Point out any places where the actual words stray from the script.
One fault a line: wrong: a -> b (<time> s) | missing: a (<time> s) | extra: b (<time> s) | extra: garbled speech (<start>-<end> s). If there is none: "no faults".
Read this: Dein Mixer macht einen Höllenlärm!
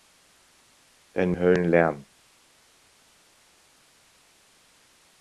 missing: Mixer macht einen (1.3 s)